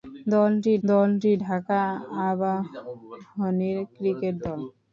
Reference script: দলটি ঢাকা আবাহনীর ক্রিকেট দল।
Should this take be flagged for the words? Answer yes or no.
yes